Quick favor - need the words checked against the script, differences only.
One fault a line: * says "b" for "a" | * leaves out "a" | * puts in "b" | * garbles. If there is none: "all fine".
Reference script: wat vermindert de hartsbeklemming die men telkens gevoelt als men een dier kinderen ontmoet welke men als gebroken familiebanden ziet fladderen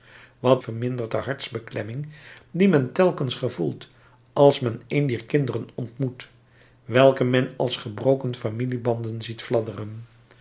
all fine